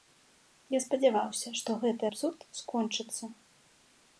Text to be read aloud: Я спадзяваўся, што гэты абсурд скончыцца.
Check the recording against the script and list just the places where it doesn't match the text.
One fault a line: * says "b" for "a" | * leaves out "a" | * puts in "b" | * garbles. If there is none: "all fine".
all fine